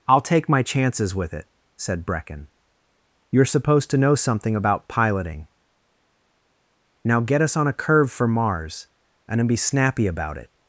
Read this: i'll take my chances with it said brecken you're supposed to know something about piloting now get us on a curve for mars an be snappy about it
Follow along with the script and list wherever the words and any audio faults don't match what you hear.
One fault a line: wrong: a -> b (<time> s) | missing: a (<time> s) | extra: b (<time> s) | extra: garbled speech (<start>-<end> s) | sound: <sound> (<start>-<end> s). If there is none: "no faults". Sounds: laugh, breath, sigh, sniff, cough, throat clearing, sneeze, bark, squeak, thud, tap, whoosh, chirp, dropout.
wrong: an -> and then (9.3 s)